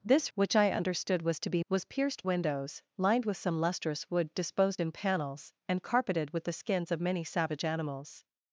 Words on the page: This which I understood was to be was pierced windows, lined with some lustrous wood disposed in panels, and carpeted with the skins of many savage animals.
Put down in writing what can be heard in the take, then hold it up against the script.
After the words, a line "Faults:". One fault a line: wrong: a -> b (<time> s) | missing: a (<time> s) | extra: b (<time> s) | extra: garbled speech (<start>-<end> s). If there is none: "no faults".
This which I understood was to be was pierced windows, lined with some lustrous wood disposed in panels, and carpeted with the skins of many savage animals.
Faults:
no faults